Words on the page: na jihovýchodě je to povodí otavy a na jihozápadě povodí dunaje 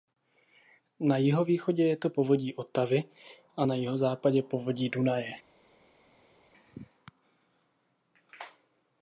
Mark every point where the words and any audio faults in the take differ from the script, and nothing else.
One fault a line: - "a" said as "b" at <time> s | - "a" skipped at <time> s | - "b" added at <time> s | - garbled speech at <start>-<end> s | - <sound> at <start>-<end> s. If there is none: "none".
none